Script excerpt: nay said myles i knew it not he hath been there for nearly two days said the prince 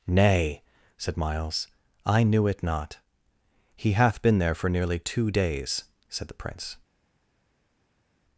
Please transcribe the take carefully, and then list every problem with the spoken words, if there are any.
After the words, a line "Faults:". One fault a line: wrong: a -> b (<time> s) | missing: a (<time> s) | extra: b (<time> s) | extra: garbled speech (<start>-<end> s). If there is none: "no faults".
nay said myles i knew it not he hath been there for nearly two days said the prince
Faults:
no faults